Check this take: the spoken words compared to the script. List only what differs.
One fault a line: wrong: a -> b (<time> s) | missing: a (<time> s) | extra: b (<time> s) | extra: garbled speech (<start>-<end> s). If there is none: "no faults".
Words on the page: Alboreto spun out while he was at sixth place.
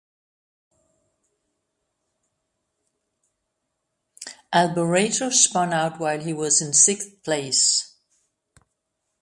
wrong: at -> in (6.6 s)